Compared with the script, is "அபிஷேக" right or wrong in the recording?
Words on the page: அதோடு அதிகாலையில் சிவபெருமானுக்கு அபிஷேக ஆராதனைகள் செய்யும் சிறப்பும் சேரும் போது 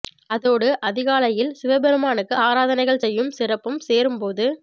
wrong